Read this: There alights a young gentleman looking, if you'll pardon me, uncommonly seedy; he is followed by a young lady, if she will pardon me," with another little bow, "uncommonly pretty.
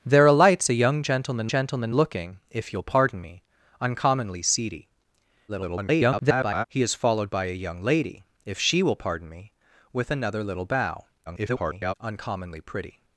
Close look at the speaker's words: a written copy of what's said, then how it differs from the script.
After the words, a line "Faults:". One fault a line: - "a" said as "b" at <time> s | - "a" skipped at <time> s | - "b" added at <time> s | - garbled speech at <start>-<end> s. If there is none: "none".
There alights a young gentleman gentleman looking, if you'll pardon me, uncommonly seedy; [garbled] he is followed by a young lady, if she will pardon me," with another little bow, [garbled] "uncommonly pretty.
Faults:
- "gentleman" added at 1.5 s
- garbled speech at 5.5-6.7 s
- garbled speech at 11.3-11.9 s